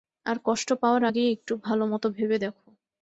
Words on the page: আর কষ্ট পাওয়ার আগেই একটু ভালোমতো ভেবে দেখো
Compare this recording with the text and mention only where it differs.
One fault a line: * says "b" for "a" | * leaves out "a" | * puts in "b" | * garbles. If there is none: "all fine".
all fine